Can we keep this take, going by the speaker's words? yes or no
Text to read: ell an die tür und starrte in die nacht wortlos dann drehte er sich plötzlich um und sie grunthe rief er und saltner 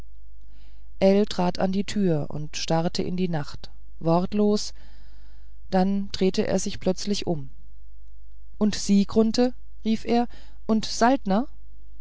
no